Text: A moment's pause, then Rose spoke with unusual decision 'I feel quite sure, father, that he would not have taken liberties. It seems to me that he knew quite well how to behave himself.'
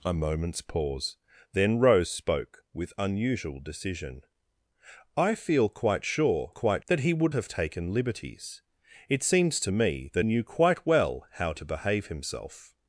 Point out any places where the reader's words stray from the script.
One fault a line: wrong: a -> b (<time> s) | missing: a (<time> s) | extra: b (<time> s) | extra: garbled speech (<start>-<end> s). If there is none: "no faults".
wrong: father -> quite (6.5 s)
missing: not (7.3 s)
missing: he (10.3 s)